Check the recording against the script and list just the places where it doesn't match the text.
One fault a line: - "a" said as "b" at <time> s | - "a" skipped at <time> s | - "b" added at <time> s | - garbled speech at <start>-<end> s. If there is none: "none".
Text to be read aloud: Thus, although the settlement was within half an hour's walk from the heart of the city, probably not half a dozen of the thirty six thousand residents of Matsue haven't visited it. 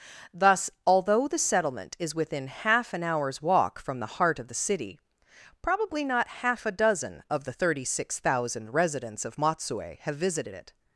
- "was" said as "is" at 2.0 s
- "haven't" said as "have" at 10.0 s